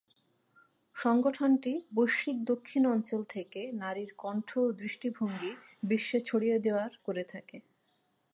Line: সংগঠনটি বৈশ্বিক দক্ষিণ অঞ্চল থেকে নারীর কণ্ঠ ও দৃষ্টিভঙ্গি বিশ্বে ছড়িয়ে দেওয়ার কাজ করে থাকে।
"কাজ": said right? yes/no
no